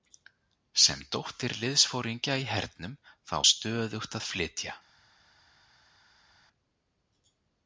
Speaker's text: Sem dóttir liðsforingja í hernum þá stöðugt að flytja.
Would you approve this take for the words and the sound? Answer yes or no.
yes